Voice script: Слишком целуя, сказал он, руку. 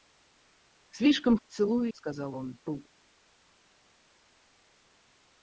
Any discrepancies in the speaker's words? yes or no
no